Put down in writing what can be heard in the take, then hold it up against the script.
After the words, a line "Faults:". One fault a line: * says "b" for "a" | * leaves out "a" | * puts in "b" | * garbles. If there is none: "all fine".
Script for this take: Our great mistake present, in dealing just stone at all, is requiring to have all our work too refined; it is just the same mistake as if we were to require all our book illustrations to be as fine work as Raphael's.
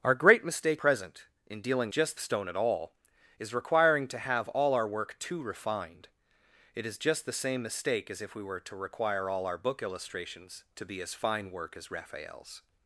Our great mistake present, in dealing just stone at all, is requiring to have all our work too refined; it is just the same mistake as if we were to require all our book illustrations to be as fine work as Raphael's.
Faults:
all fine